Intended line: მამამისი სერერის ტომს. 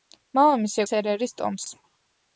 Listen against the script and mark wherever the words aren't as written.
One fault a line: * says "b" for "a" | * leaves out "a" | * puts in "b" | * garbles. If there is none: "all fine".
all fine